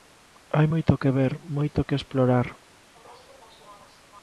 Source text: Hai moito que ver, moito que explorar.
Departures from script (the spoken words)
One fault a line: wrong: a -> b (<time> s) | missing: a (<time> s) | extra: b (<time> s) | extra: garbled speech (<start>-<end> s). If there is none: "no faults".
no faults